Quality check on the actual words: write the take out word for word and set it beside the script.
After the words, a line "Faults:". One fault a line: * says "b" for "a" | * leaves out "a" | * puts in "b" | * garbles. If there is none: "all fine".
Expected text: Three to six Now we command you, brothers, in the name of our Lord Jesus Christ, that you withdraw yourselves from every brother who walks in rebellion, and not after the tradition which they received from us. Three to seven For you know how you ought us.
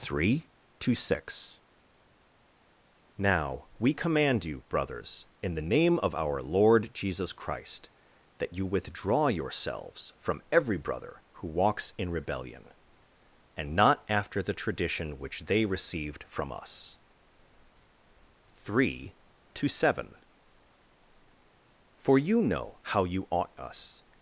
Three to six Now we command you, brothers, in the name of our Lord Jesus Christ, that you withdraw yourselves from every brother who walks in rebellion, and not after the tradition which they received from us. Three to seven For you know how you ought us.
Faults:
all fine